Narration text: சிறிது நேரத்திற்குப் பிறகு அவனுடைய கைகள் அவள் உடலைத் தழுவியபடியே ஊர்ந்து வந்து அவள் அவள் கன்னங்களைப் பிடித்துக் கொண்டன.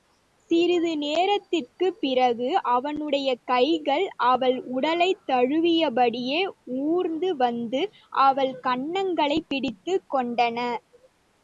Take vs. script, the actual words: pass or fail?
fail